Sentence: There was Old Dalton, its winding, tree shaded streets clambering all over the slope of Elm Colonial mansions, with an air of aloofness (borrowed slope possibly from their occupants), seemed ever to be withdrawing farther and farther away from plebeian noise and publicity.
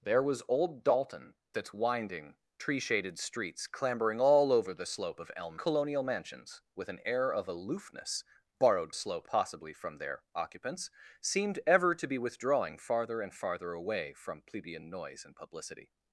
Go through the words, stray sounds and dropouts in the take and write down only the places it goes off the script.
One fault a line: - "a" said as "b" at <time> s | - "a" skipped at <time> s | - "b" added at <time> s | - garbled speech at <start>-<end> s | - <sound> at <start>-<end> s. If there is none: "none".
none